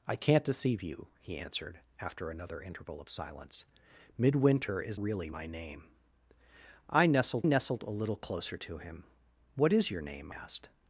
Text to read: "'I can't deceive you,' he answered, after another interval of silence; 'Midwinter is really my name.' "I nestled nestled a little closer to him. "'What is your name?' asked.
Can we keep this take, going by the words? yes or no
yes